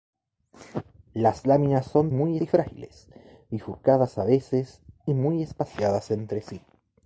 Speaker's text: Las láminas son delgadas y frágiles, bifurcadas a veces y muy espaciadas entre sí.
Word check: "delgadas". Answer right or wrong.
wrong